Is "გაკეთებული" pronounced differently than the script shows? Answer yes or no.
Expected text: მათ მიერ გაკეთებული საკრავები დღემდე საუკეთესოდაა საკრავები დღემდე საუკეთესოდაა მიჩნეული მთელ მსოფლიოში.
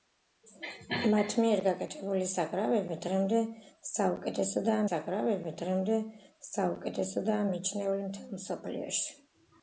no